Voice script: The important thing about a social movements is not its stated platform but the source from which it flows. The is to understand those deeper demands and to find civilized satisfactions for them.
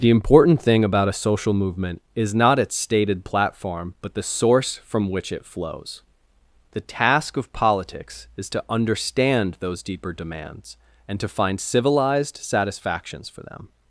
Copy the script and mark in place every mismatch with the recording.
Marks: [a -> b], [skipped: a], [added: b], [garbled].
The important thing about a social [movements -> movement] is not its stated platform but the source from which it flows. The [added: task of politics] is to understand those deeper demands and to find civilized satisfactions for them.